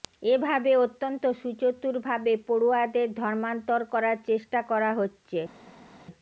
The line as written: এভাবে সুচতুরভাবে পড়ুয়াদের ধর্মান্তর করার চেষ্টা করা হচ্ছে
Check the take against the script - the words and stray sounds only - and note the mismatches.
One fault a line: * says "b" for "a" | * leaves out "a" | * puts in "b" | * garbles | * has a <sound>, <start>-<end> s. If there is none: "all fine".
* puts in "অত্যন্ত"